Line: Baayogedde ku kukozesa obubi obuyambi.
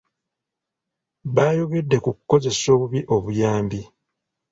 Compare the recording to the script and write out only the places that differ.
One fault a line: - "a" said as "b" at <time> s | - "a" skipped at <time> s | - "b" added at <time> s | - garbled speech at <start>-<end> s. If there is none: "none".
none